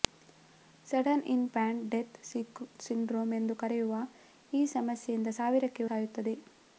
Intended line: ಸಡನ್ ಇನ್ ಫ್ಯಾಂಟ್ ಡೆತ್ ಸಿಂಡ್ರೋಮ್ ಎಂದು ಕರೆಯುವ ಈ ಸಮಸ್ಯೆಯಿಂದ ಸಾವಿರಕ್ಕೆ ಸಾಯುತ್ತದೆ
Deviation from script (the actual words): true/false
false